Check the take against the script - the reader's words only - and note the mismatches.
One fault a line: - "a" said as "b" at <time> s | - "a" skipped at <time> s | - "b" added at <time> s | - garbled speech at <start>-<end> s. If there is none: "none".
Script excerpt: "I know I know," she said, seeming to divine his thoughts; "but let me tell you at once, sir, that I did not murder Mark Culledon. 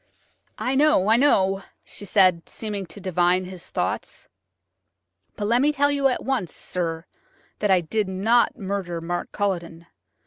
none